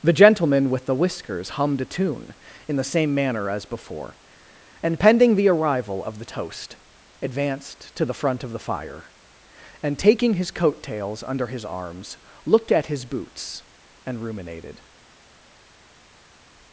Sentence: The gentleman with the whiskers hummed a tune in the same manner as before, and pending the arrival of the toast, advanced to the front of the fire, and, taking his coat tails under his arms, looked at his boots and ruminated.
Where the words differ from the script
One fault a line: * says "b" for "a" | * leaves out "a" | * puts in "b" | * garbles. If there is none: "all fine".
all fine